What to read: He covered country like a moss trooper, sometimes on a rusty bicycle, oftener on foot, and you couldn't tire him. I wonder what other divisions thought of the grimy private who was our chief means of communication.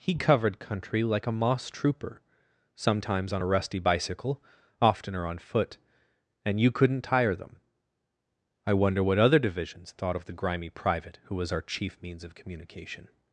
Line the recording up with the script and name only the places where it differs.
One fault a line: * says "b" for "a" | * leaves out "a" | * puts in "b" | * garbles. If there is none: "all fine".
* says "them" for "him"